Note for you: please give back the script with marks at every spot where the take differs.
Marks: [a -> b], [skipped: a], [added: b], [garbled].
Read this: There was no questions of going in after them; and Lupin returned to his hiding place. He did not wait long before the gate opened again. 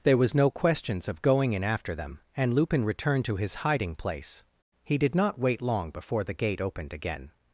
There was no questions of going in after them; and Lupin returned to his hiding place. He did not wait long before the gate opened again.